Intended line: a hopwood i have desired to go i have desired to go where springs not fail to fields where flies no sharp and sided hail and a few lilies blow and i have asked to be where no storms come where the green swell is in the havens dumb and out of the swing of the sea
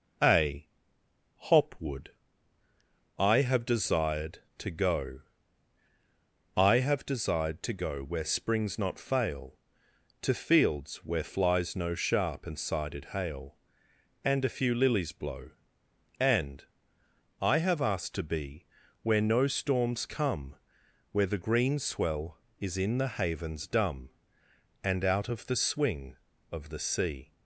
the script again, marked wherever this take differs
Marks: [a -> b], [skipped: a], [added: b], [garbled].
a hopwood i have desired to go i have desired to go where springs not fail to fields where flies no sharp and sided hail and a few lilies blow and i have asked to be where no storms come where the green swell is in the havens dumb and out of the swing of the sea